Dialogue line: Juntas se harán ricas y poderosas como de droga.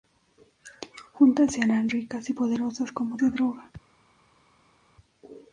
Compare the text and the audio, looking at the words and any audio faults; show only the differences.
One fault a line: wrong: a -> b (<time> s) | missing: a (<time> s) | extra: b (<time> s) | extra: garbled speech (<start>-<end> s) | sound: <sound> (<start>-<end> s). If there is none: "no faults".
no faults